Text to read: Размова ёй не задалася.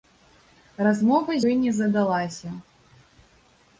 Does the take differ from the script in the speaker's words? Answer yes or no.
no